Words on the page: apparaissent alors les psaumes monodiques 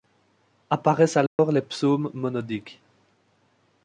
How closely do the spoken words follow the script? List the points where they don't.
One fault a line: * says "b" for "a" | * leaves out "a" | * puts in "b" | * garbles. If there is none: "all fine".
all fine